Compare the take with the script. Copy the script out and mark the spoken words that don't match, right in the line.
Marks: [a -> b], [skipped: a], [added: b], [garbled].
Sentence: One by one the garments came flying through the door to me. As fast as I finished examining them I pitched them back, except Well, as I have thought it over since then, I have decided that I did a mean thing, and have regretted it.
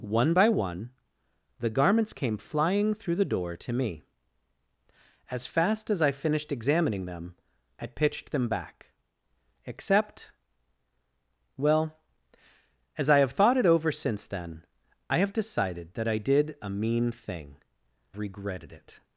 One by one the garments came flying through the door to me. As fast as I finished examining them I pitched them back, except Well, as I have thought it over since then, I have decided that I did a mean thing, [skipped: and have] regretted it.